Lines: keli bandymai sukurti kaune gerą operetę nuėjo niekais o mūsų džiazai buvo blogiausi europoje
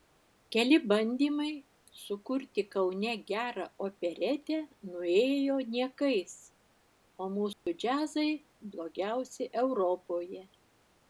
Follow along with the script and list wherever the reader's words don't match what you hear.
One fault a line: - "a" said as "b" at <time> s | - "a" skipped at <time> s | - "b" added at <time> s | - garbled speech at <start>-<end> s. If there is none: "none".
- "buvo" skipped at 8.3 s